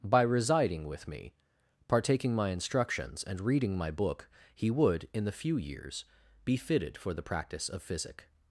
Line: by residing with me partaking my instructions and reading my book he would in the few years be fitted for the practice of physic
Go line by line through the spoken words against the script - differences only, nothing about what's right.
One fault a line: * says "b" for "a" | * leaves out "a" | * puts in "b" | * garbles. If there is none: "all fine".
all fine